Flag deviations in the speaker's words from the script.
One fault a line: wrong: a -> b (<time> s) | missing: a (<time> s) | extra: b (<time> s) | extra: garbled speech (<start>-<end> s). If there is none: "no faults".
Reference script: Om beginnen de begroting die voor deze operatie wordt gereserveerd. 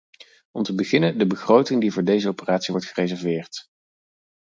extra: te (0.6 s)